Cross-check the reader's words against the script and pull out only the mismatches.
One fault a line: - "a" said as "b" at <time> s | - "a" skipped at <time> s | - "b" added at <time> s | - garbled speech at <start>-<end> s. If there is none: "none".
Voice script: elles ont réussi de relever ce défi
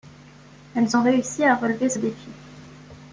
- "de" said as "à" at 1.4 s